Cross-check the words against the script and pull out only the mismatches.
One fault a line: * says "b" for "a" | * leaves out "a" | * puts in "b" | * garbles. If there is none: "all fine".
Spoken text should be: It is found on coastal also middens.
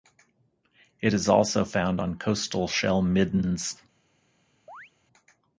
* puts in "also"
* says "shell" for "also"